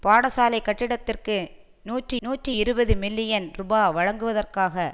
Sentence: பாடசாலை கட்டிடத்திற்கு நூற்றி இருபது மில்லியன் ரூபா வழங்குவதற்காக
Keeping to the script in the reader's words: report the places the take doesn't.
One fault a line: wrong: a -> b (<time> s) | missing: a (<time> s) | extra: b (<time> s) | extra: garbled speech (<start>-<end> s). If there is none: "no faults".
extra: நூற்றி (2.2 s)